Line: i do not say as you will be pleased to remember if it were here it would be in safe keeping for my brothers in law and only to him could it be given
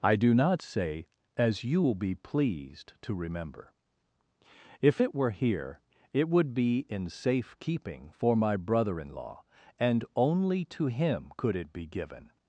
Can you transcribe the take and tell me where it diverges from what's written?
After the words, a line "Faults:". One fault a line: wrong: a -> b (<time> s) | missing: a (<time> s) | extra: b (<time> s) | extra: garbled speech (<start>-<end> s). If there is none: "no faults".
i do not say as you will be pleased to remember if it were here it would be in safe keeping for my brother in law and only to him could it be given
Faults:
wrong: brothers -> brother (8.6 s)